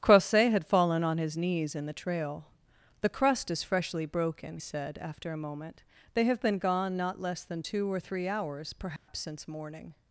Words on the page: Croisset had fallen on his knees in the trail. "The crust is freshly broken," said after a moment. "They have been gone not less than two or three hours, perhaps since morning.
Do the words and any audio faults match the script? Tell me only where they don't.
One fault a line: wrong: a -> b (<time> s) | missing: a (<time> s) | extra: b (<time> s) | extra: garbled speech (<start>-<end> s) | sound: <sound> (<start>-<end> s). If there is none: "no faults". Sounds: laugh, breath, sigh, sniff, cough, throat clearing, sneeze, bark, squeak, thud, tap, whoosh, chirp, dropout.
sound: dropout (9.0-9.1 s)